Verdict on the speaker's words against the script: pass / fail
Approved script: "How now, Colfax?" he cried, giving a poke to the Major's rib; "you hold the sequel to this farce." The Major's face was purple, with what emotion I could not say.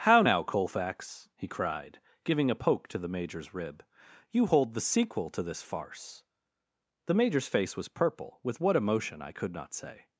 pass